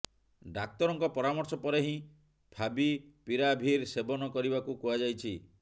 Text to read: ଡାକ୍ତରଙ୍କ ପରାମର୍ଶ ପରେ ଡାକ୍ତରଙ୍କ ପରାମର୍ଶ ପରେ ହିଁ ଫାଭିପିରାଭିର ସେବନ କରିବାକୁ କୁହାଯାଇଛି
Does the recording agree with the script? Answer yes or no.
no